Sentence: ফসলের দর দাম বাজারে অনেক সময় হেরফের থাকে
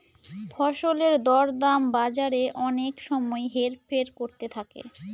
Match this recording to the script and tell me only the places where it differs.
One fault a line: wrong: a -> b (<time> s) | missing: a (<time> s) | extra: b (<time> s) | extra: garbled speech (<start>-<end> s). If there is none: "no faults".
extra: করতে (4.2 s)